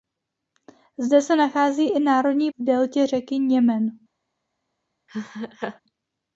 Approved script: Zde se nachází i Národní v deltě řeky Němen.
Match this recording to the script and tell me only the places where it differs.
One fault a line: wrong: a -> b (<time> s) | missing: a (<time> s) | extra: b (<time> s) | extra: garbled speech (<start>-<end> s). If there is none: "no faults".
no faults